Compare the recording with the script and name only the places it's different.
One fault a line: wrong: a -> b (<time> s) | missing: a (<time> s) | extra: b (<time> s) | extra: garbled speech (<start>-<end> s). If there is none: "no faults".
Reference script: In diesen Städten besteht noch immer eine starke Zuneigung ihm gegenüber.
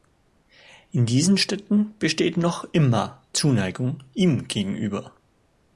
missing: eine starke (3.3 s)